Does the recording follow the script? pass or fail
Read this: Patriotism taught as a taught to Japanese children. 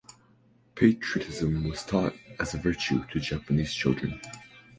fail